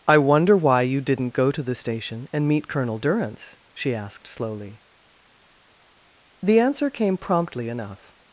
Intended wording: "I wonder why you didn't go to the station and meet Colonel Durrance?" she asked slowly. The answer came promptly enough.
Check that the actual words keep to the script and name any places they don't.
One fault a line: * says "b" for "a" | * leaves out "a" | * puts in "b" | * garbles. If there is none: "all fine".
all fine